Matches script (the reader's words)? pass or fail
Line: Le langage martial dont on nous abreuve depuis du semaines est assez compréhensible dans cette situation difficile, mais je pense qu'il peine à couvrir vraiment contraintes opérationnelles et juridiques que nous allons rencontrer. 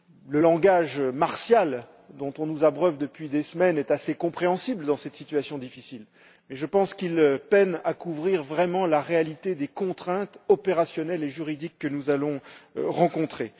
fail